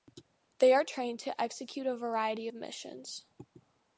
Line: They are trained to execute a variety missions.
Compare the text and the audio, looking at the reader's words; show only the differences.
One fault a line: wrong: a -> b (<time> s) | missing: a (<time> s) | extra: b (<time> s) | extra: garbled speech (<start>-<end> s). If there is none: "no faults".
no faults